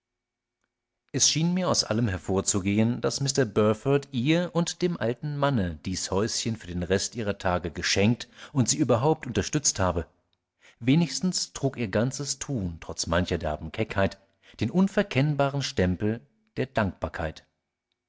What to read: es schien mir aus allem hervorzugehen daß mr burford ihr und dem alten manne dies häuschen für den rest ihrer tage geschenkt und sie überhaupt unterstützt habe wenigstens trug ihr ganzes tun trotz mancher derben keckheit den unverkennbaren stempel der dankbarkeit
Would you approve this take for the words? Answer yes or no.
yes